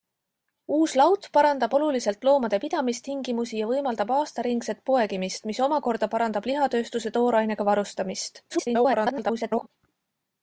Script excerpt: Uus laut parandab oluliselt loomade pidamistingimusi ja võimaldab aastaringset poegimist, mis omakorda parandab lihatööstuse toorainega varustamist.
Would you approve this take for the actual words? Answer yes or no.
no